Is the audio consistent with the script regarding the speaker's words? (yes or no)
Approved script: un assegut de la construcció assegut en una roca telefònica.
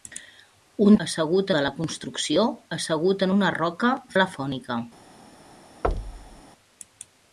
yes